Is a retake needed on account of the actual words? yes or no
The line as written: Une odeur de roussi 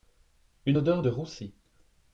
no